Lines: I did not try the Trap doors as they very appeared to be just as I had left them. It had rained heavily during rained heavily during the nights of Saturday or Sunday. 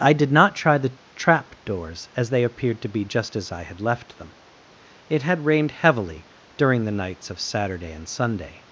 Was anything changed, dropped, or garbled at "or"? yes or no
yes